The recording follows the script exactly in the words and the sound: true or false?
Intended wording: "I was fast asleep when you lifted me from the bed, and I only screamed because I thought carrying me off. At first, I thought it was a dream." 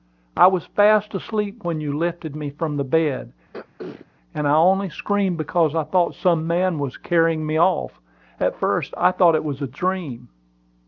false